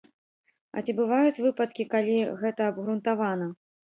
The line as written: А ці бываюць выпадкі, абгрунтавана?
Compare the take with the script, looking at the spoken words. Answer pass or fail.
fail